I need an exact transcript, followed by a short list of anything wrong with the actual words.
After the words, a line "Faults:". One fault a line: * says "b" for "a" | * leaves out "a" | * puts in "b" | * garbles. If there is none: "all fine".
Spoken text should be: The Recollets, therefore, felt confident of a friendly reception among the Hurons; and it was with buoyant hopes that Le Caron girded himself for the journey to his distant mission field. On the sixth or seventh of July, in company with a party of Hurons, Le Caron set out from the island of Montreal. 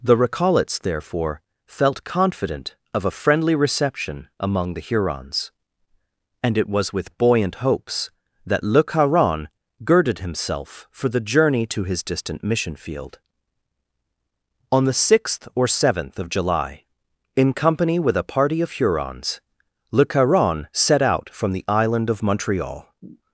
The Recollets, therefore, felt confident of a friendly reception among the Hurons; and it was with buoyant hopes that Le Caron girded himself for the journey to his distant mission field. On the sixth or seventh of July, in company with a party of Hurons, Le Caron set out from the island of Montreal.
Faults:
all fine